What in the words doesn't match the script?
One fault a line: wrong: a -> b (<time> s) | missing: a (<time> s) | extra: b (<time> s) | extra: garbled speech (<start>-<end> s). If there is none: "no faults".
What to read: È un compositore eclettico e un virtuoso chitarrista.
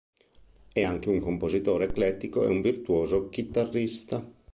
extra: anche (0.8 s)